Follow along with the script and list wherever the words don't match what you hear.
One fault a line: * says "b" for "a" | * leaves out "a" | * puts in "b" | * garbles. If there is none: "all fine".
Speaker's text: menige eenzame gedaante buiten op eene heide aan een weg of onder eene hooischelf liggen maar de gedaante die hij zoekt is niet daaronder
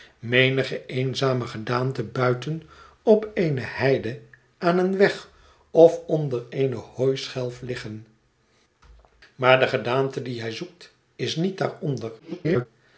* garbles